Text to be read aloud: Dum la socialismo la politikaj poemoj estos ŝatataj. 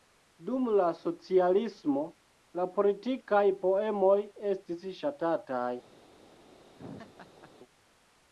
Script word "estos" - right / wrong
wrong